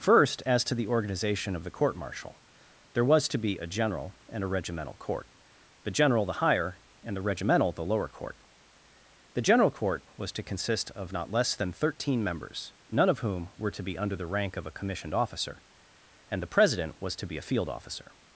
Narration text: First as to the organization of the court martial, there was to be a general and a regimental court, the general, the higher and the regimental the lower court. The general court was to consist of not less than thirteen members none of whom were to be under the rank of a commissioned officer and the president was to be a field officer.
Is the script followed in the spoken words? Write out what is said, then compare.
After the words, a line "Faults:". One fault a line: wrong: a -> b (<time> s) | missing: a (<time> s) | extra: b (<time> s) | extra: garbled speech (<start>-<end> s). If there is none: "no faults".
First as to the organization of the court martial, there was to be a general and a regimental court, the general, the higher and the regimental the lower court. The general court was to consist of not less than thirteen members none of whom were to be under the rank of a commissioned officer and the president was to be a field officer.
Faults:
no faults